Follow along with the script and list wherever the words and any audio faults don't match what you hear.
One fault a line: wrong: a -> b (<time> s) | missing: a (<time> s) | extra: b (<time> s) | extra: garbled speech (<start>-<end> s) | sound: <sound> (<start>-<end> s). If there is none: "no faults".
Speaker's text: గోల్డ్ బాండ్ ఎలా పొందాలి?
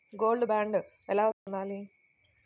sound: dropout (1.3-1.5 s)